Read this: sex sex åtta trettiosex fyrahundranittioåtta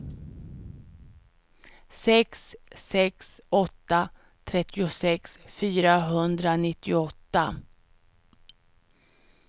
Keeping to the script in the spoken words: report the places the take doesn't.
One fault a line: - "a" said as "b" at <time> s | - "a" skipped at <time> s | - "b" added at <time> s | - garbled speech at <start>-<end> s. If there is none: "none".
none